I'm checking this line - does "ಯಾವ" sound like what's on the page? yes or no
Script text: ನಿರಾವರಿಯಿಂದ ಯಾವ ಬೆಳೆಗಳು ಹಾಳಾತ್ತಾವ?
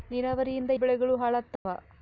no